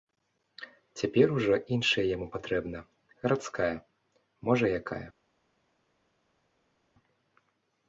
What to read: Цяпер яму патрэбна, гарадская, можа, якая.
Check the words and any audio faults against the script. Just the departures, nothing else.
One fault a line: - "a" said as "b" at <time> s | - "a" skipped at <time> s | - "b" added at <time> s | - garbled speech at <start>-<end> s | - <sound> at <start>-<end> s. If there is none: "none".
- "ужо іншая" added at 1.4 s